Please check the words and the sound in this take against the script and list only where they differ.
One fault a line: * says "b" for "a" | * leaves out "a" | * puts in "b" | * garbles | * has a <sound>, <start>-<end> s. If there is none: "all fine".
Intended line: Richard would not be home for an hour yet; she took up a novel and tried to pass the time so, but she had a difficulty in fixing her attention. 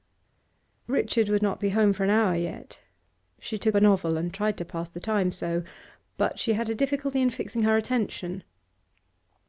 * leaves out "up"